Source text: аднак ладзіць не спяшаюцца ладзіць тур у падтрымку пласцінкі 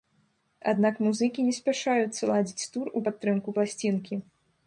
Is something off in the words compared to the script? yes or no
yes